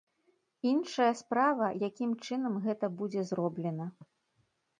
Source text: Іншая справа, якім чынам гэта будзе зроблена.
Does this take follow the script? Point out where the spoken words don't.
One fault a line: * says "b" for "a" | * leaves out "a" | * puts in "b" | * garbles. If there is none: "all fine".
all fine